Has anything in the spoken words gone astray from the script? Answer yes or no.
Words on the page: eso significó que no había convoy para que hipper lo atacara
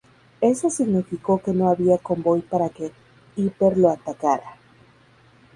no